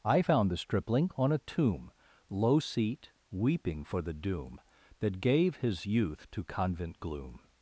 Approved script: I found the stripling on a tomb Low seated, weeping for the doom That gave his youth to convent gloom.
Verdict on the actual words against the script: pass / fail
fail